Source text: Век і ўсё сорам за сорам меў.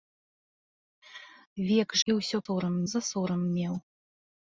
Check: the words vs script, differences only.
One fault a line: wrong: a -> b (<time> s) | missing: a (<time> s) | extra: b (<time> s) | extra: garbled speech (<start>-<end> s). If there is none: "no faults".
no faults